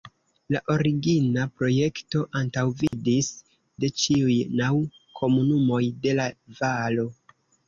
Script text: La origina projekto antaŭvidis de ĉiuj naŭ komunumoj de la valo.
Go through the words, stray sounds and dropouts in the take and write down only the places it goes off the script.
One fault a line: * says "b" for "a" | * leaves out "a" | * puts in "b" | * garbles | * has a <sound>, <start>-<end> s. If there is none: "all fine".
* has a dropout, 2.9-2.9 s